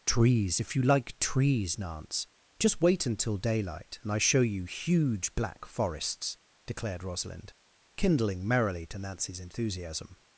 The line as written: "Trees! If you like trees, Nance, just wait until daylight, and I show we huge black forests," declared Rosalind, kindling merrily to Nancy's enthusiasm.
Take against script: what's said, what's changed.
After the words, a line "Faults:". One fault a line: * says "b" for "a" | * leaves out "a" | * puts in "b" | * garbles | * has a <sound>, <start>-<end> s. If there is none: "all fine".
"Trees! If you like trees, Nance, just wait until daylight, and I show you huge black forests," declared Rosalind, kindling merrily to Nancy's enthusiasm.
Faults:
* says "you" for "we"